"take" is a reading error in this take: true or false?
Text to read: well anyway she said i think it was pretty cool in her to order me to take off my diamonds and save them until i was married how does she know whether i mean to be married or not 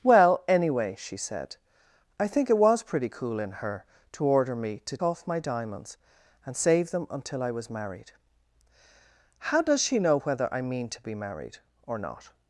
true